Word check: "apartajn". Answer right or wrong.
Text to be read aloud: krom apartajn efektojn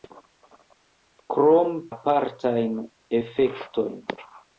right